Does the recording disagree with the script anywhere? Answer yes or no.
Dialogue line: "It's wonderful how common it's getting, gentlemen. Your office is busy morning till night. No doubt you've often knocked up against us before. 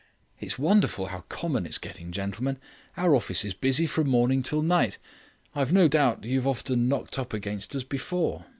yes